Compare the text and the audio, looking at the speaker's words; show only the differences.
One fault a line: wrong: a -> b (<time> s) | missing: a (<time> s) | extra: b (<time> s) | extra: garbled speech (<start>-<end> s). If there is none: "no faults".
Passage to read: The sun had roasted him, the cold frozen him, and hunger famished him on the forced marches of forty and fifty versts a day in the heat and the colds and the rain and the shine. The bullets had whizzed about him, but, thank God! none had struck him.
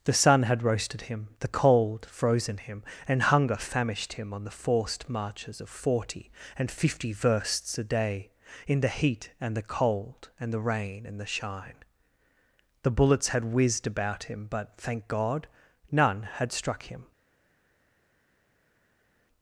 wrong: colds -> cold (9.6 s)